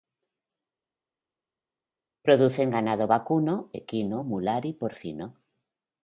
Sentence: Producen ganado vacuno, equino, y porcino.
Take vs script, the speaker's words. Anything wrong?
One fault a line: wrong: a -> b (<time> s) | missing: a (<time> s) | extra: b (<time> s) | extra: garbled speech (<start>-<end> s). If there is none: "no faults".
extra: mular (4.2 s)